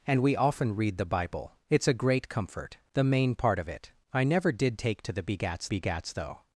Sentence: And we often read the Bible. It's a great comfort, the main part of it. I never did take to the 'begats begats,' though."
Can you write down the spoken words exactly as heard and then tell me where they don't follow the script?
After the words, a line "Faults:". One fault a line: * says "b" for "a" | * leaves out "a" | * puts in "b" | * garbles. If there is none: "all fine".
And we often read the Bible. It's a great comfort, the main part of it. I never did take to the 'begats begats,' though."
Faults:
all fine